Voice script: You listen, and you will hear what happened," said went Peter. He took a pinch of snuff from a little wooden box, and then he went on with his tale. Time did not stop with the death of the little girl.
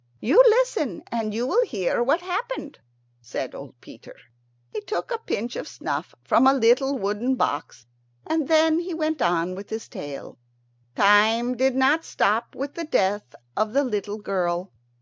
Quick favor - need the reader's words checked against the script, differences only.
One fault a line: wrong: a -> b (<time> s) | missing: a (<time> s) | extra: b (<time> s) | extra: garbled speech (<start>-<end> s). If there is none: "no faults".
wrong: went -> old (3.5 s)